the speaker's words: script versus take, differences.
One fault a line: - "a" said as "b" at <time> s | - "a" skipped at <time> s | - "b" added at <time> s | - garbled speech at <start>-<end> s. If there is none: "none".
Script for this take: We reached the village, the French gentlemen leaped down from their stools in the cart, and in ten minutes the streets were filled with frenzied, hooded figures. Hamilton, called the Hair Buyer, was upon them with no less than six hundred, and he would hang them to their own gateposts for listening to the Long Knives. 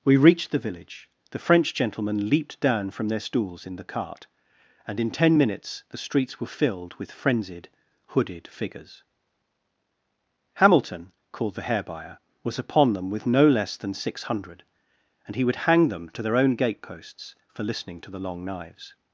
none